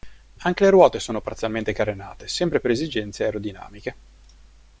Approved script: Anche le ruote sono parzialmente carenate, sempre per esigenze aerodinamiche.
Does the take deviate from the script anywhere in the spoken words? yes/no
no